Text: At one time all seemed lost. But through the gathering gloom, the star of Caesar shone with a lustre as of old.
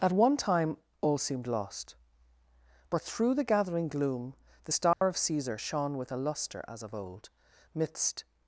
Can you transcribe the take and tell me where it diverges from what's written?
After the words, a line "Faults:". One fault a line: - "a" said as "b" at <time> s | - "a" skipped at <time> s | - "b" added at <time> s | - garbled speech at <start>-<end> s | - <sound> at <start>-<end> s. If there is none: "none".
At one time all seemed lost. But through the gathering gloom, the star of Caesar shone with a lustre as of old. Midst
Faults:
- dropout at 4.9-5.0 s
- "Midst" added at 7.7 s